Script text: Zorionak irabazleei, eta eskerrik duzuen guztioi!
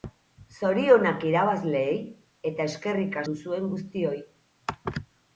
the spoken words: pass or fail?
pass